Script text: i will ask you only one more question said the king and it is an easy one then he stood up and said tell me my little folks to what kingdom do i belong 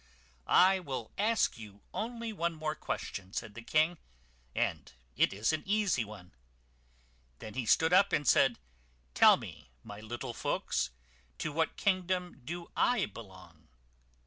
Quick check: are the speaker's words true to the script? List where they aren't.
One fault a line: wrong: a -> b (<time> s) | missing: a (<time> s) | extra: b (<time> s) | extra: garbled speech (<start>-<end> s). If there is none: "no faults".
no faults